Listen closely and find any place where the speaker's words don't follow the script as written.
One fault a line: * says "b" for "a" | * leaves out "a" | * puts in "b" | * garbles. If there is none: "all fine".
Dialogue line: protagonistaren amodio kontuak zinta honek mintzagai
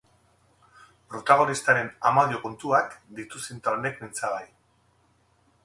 * puts in "ditu"